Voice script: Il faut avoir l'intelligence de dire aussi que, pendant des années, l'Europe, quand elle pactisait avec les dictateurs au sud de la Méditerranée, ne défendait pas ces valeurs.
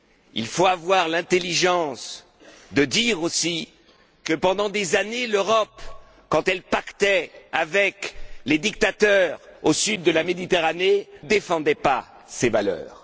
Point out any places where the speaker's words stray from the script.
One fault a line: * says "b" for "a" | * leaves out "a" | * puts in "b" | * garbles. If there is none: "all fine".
* leaves out "ne"